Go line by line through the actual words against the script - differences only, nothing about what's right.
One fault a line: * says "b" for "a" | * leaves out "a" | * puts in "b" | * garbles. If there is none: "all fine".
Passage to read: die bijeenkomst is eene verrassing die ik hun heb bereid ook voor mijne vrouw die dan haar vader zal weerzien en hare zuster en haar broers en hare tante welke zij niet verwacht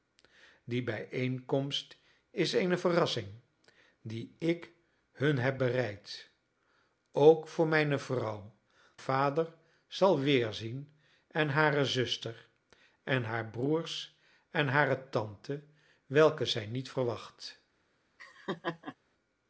* leaves out "die dan haar"